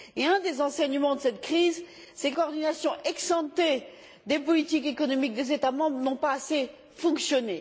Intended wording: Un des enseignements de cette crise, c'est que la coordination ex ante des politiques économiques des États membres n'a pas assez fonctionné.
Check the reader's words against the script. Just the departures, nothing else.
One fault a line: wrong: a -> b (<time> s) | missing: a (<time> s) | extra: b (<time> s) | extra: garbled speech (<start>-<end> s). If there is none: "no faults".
missing: la (2.4 s)